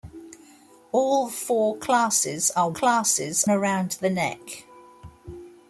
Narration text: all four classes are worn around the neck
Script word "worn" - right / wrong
wrong